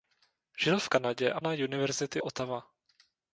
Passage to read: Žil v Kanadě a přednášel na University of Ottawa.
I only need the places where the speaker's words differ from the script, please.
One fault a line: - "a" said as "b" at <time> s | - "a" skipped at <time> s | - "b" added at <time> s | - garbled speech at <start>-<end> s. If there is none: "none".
- "přednášel" skipped at 1.4 s
- "of" skipped at 2.2 s